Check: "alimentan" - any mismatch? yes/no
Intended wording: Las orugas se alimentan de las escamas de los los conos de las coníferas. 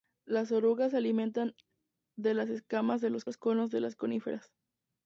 no